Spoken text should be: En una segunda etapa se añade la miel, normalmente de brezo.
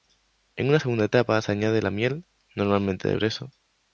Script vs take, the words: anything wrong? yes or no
no